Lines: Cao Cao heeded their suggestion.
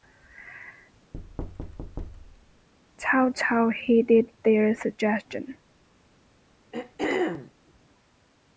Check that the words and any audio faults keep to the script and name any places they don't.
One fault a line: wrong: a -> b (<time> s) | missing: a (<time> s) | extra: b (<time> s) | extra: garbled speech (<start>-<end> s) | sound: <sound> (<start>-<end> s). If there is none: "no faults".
sound: thud (1.1-2.7 s)
sound: throat clearing (6.7-7.5 s)